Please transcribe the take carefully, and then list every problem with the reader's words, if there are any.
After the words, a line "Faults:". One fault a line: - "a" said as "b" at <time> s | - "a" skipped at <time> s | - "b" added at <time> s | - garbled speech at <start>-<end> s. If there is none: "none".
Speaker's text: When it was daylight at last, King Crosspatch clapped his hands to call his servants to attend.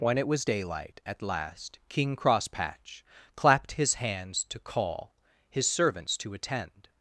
When it was daylight at last, King Crosspatch clapped his hands to call his servants to attend.
Faults:
none